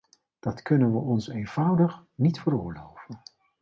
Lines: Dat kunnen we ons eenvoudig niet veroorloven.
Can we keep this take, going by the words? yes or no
yes